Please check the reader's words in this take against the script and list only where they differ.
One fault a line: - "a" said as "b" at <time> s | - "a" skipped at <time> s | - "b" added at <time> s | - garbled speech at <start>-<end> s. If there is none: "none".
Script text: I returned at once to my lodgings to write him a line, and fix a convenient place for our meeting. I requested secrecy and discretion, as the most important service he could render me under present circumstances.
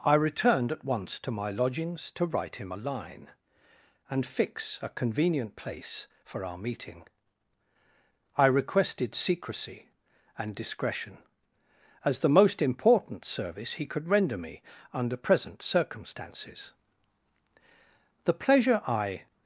- "The pleasure I" added at 18.2 s